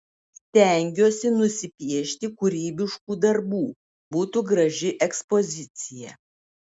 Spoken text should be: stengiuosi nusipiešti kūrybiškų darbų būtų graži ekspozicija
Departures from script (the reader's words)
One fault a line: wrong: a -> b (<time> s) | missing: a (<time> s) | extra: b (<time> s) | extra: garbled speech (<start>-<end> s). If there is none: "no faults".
no faults